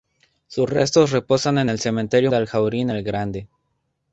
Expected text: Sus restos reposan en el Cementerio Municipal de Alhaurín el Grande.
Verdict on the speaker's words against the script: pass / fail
fail